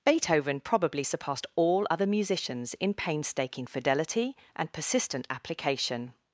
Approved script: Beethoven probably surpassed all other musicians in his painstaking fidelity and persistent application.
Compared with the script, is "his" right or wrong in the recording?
wrong